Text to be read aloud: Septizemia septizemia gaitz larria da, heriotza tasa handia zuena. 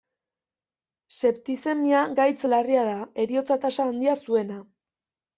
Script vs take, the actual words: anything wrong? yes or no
yes